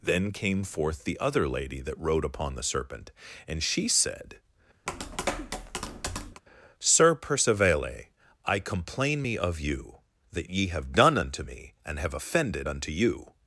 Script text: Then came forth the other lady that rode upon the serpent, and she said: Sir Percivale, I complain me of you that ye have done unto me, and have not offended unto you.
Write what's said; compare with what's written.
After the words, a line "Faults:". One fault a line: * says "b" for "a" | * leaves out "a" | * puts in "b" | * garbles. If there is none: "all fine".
Then came forth the other lady that rode upon the serpent, and she said: Sir Percivale, I complain me of you that ye have done unto me, and have offended unto you.
Faults:
* leaves out "not"